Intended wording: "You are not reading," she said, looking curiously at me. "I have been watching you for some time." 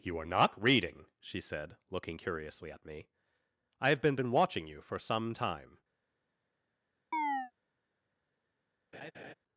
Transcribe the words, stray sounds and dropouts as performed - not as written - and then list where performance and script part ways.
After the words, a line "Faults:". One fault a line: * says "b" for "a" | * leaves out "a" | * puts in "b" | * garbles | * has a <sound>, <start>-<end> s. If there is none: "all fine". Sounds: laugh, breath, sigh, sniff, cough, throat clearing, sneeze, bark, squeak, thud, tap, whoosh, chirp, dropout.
"You are not reading," she said, looking curiously at me. "I have been been watching you for some time."
Faults:
* puts in "been"
* has a chirp, 7.1-7.5 s
* has a laugh, 8.9-9.3 s